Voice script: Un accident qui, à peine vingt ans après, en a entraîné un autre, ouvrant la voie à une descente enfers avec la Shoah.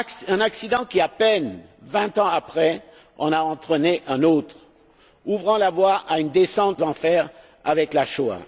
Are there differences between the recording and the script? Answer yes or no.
no